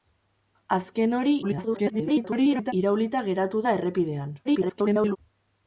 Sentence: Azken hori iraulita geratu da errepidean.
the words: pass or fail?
fail